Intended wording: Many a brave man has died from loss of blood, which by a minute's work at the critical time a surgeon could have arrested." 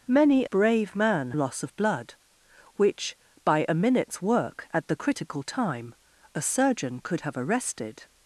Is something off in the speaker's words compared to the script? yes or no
yes